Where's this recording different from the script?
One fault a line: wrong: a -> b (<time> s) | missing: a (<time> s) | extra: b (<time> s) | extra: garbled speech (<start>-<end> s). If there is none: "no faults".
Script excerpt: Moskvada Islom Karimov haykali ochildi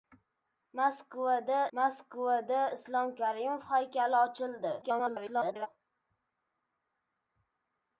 extra: moskvada (1.8 s)
extra: garbled speech (4.8-5.7 s)